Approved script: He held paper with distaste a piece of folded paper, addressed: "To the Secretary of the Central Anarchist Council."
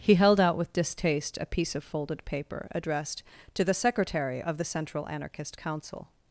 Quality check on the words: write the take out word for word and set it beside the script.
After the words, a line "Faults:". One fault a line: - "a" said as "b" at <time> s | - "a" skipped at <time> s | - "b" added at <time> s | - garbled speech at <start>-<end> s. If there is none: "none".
He held out with distaste a piece of folded paper, addressed: "To the Secretary of the Central Anarchist Council."
Faults:
- "paper" said as "out" at 0.4 s